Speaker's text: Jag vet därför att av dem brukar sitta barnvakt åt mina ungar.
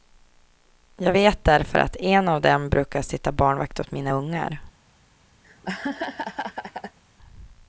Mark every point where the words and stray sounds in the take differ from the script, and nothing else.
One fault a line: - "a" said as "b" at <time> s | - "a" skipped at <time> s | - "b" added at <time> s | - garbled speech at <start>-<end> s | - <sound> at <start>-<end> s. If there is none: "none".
- "en" added at 2.0 s
- laugh at 5.4-7.0 s